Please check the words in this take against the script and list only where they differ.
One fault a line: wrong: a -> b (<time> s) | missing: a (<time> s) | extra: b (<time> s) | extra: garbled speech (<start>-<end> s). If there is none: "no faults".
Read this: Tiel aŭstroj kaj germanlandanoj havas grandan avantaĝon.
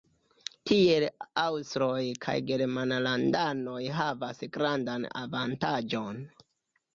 no faults